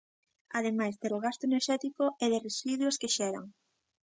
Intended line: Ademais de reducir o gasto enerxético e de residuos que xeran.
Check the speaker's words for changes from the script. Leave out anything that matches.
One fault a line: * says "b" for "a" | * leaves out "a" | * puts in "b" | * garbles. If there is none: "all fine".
* leaves out "reducir"